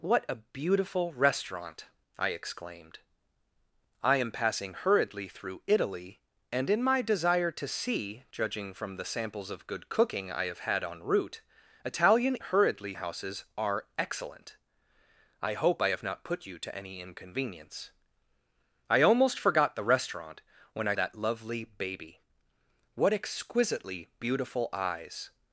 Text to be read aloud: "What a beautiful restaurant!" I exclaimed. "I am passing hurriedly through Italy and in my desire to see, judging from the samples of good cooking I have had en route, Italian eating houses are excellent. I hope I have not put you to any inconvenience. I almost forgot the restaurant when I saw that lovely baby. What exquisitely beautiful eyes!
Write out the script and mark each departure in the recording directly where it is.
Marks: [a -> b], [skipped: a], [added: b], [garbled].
"What a beautiful restaurant!" I exclaimed. "I am passing hurriedly through Italy and in my desire to see, judging from the samples of good cooking I have had en route, Italian [eating -> hurriedly] houses are excellent. I hope I have not put you to any inconvenience. I almost forgot the restaurant when I [skipped: saw] that lovely baby. What exquisitely beautiful eyes!